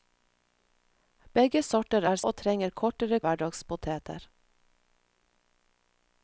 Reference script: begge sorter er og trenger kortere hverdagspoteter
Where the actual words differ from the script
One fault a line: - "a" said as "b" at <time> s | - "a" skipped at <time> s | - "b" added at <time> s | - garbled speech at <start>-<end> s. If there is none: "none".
none